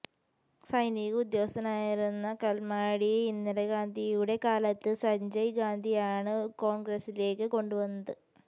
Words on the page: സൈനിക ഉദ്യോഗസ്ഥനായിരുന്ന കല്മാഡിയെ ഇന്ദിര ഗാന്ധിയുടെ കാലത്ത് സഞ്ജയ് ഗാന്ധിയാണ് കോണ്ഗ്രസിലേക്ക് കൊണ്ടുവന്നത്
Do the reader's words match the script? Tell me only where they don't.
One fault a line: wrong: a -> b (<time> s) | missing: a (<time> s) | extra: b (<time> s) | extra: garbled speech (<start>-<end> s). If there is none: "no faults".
no faults